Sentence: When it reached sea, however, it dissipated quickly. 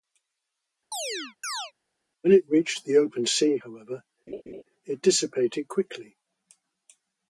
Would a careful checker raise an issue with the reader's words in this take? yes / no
yes